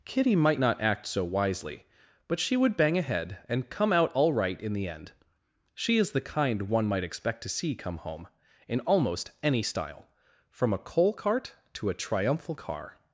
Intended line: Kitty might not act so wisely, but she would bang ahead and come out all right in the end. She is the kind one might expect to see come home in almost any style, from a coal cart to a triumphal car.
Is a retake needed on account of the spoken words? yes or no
no